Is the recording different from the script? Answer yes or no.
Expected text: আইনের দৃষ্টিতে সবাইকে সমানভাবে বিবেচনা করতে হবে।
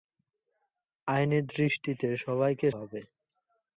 yes